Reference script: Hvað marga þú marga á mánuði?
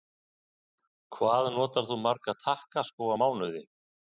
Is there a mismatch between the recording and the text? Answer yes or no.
yes